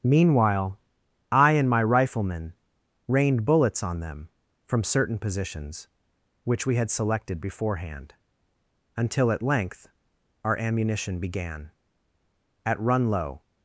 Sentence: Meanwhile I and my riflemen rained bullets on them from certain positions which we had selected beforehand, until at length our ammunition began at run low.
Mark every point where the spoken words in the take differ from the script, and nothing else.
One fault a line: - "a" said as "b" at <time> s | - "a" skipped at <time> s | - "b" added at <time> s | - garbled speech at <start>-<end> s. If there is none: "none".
none